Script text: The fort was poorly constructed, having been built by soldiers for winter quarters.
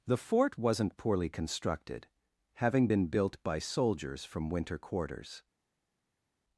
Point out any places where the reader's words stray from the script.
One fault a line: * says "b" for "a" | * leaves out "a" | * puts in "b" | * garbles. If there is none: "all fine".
* says "wasn't" for "was"
* says "from" for "for"